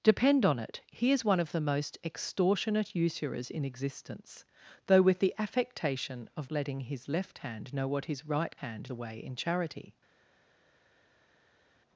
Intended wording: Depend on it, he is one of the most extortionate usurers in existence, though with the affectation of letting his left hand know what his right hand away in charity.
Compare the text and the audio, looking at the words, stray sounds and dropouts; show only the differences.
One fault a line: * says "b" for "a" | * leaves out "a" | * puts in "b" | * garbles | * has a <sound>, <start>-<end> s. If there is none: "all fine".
all fine